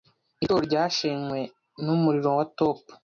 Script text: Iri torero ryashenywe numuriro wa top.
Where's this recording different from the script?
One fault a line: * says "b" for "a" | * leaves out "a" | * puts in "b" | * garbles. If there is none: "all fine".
all fine